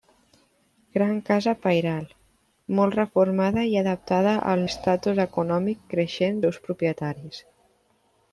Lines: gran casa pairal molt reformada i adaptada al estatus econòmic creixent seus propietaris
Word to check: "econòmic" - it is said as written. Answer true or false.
true